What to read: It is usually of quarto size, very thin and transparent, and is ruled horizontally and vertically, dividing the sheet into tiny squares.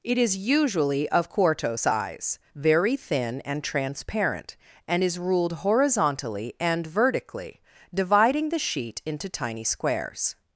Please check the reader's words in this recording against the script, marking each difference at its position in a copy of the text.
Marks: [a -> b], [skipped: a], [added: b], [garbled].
It is usually of quarto size, very thin and transparent, and is ruled horizontally and vertically, dividing the sheet into tiny squares.